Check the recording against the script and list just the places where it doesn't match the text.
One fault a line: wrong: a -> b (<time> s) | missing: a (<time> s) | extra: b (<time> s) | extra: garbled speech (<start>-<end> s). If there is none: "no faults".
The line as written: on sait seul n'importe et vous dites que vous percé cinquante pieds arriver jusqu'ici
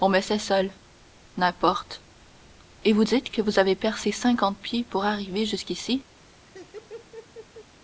extra: me (0.1 s)
extra: avez (3.6 s)
extra: pour (4.9 s)